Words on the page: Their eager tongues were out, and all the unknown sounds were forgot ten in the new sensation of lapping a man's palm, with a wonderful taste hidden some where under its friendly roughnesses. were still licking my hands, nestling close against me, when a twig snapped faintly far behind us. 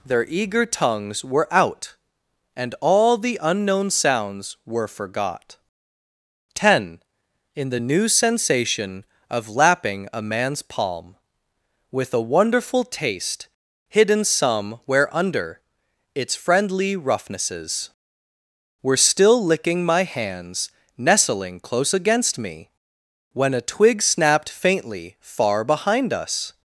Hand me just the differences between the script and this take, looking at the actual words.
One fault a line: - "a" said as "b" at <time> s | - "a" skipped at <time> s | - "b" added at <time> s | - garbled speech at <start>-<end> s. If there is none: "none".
none